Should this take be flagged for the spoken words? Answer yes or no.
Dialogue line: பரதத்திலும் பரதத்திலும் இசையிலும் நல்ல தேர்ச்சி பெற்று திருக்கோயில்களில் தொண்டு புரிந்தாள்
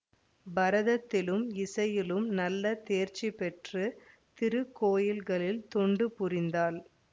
yes